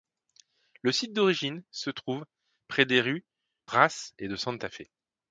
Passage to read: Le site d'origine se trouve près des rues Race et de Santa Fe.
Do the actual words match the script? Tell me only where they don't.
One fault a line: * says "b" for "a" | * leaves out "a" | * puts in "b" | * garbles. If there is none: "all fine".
all fine